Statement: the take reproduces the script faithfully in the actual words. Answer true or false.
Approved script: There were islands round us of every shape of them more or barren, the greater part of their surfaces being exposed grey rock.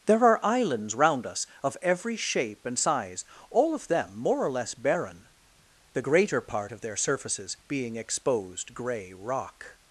false